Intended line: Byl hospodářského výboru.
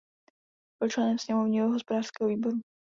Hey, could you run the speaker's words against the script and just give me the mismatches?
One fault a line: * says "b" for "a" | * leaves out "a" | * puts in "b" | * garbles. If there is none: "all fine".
* puts in "členem sněmovního"